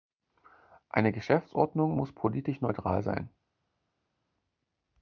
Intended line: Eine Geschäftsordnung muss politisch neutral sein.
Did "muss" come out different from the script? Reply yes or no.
no